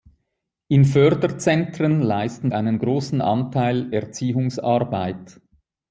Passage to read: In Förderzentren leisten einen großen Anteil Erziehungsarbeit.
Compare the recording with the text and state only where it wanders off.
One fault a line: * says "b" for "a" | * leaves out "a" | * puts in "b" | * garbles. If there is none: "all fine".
all fine